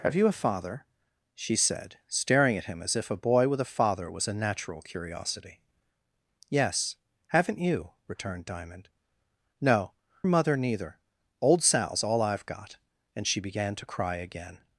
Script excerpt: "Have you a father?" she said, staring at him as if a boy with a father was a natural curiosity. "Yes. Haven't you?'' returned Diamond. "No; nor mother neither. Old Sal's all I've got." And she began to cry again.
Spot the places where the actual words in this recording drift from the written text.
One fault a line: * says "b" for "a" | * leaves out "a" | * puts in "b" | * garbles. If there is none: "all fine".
* leaves out "nor"